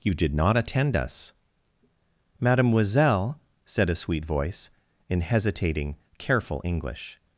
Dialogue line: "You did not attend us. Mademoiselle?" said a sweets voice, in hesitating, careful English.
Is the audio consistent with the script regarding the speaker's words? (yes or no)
no